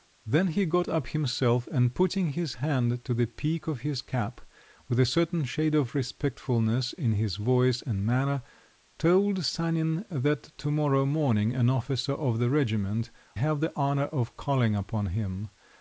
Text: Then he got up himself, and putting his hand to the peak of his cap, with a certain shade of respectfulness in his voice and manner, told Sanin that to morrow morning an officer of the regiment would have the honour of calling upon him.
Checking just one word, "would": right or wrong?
wrong